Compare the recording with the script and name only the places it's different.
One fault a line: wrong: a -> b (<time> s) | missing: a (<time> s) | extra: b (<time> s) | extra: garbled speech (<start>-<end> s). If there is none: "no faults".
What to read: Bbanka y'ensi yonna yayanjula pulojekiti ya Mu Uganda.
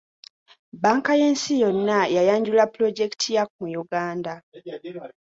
no faults